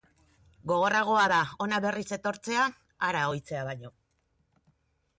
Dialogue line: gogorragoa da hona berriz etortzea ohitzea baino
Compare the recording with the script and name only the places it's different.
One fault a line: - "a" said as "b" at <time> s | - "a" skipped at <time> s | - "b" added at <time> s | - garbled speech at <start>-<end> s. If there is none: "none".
- "hara" added at 3.1 s